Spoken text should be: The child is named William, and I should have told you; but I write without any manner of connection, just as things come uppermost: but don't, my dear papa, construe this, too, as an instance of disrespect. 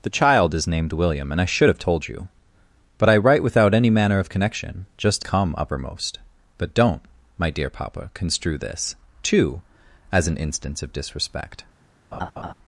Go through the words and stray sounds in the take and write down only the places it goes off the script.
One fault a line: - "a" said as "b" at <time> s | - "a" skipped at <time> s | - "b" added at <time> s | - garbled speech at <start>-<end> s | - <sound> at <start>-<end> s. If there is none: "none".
- "as things" skipped at 5.3 s
- laugh at 12.1-12.5 s